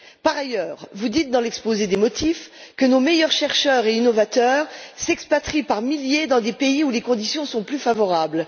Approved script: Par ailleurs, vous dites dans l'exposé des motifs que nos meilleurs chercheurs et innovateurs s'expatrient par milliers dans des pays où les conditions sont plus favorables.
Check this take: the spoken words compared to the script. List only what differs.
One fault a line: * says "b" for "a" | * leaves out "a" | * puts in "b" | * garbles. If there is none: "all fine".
all fine